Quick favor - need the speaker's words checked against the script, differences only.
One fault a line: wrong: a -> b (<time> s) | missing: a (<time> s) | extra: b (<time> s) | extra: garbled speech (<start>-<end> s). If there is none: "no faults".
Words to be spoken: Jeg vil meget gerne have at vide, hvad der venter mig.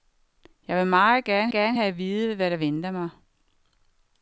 extra: gerne (1.5 s)